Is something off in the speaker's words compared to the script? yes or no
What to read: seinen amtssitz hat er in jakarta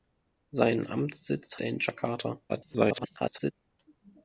yes